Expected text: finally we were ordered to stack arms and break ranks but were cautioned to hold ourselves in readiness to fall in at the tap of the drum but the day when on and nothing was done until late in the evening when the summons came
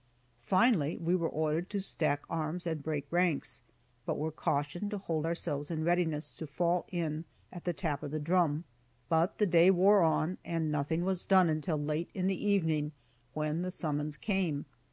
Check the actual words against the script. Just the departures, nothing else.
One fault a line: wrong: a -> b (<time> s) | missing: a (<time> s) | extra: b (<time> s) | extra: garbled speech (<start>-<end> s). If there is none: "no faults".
wrong: when -> wore (9.7 s)